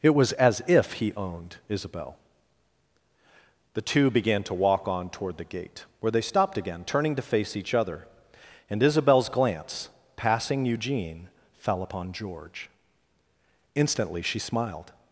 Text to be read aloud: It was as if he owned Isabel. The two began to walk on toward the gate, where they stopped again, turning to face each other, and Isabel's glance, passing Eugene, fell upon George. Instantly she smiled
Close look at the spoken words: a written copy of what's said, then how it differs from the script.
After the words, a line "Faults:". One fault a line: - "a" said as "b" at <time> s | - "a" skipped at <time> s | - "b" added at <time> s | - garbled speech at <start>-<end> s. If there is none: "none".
It was as if he owned Isabel. The two began to walk on toward the gate, where they stopped again, turning to face each other, and Isabel's glance, passing Eugene, fell upon George. Instantly she smiled
Faults:
none